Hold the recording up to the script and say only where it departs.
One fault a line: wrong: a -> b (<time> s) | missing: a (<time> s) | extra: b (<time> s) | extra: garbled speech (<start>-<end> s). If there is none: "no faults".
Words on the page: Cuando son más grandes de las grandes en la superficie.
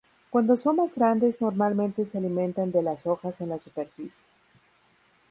extra: normalmente se alimentan (1.4 s)
wrong: grandes -> hojas (3.0 s)